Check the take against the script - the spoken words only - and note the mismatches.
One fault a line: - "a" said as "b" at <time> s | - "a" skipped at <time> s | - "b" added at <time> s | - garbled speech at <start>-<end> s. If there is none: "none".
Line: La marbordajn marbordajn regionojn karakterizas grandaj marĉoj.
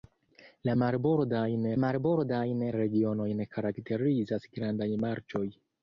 none